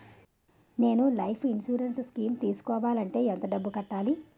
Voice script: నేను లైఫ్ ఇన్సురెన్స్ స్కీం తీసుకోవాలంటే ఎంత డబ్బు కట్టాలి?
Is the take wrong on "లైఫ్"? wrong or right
right